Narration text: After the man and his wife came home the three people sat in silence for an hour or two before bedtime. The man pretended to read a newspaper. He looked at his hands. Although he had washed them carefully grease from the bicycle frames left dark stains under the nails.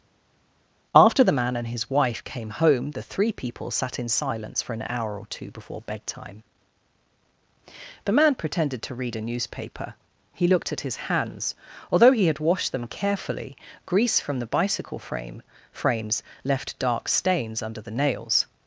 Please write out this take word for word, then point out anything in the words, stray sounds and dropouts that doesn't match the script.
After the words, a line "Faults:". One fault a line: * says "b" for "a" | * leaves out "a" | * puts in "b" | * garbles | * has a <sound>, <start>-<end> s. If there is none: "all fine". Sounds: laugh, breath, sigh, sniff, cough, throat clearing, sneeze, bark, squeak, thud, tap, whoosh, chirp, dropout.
After the man and his wife came home the three people sat in silence for an hour or two before bedtime. The man pretended to read a newspaper. He looked at his hands. Although he had washed them carefully grease from the bicycle frame frames left dark stains under the nails.
Faults:
* puts in "frame"